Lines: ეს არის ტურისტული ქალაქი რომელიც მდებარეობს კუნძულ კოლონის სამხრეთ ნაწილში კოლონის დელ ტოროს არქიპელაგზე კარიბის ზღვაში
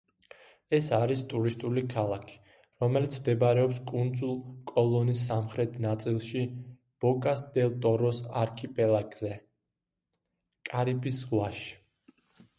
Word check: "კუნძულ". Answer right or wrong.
right